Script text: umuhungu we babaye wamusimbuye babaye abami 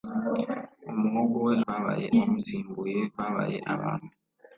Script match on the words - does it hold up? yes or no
yes